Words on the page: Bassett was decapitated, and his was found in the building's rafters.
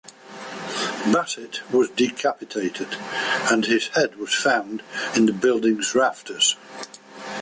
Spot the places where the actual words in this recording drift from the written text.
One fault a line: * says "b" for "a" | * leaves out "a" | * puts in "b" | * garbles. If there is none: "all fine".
* puts in "head"